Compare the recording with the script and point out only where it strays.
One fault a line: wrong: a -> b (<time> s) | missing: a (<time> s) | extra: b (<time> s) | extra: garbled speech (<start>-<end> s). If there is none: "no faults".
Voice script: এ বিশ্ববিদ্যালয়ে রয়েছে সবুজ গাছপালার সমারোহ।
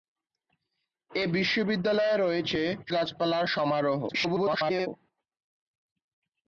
missing: সবুজ (2.6 s)
extra: garbled speech (4.1-4.9 s)